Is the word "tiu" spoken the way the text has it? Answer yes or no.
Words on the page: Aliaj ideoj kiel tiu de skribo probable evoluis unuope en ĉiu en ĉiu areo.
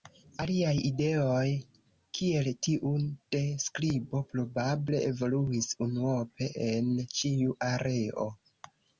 yes